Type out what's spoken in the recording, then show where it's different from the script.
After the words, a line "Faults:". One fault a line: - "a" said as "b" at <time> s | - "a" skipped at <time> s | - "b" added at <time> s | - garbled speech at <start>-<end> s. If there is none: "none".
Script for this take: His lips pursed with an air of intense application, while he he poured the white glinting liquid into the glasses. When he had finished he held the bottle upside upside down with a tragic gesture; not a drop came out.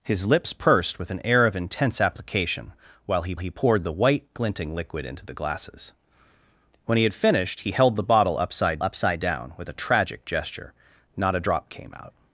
His lips pursed with an air of intense application, while he he poured the white glinting liquid into the glasses. When he had finished he held the bottle upside upside down with a tragic gesture; not a drop came out.
Faults:
none